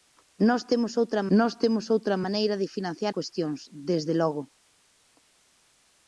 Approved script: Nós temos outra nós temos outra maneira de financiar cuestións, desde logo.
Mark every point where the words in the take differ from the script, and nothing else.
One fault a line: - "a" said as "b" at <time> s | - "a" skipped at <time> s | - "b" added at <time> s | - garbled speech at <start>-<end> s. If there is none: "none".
none